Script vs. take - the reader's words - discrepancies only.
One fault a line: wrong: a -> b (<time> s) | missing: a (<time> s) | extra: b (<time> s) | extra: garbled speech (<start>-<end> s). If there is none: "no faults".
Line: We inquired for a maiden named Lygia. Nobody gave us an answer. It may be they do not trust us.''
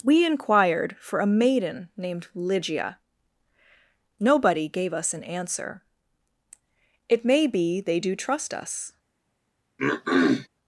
missing: not (8.2 s)